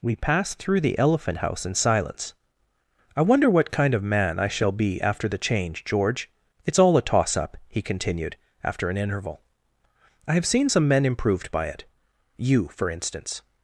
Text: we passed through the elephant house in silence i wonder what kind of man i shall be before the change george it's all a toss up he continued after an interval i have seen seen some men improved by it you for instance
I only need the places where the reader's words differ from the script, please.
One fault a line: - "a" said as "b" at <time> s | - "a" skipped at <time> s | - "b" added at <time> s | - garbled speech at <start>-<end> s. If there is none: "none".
- "before" said as "after" at 5.0 s
- "seen" skipped at 10.7 s